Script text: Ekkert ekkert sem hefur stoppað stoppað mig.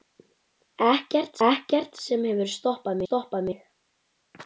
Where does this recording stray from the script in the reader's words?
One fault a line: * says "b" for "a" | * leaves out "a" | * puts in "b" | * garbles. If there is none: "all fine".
all fine